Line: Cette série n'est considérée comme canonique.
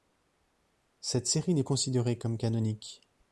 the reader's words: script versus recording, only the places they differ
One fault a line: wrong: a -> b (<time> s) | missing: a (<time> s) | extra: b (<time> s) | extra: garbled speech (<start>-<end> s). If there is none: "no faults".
no faults